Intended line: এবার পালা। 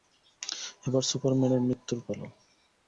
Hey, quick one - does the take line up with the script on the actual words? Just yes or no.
no